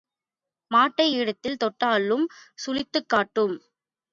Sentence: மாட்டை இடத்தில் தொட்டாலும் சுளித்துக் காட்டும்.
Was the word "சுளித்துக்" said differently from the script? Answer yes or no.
no